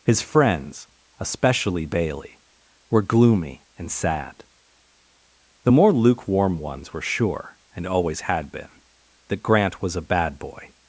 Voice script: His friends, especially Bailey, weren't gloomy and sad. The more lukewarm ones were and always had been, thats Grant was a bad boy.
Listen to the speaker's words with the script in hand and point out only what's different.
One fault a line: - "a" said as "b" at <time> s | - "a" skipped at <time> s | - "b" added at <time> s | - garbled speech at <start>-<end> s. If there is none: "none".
- "weren't" said as "were" at 2.9 s
- "sure" added at 7.0 s
- "thats" said as "that" at 9.3 s